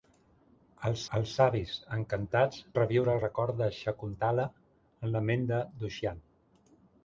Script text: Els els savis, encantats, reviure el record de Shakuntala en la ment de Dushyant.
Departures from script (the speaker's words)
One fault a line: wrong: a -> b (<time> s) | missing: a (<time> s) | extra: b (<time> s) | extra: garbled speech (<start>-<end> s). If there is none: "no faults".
no faults